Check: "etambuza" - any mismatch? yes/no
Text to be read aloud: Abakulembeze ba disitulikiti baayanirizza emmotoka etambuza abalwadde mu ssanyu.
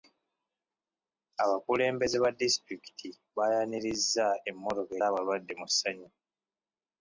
yes